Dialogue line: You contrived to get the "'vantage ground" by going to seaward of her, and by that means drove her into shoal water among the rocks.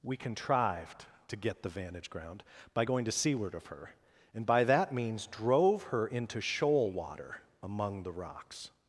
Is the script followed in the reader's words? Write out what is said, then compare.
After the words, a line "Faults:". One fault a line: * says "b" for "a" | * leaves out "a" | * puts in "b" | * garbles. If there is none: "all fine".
We contrived to get the "'vantage ground" by going to seaward of her, and by that means drove her into shoal water among the rocks.
Faults:
* says "We" for "You"